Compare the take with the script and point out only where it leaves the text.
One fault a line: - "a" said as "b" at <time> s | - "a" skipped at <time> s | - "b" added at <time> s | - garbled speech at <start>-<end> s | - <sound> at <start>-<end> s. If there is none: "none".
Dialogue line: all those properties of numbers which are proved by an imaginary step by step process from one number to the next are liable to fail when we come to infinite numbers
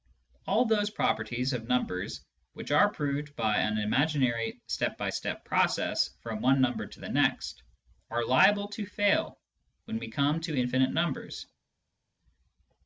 none